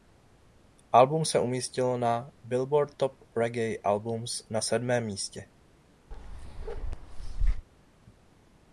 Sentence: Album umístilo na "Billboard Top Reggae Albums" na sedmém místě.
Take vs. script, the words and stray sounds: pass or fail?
fail